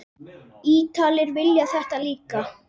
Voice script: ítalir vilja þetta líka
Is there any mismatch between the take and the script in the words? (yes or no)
no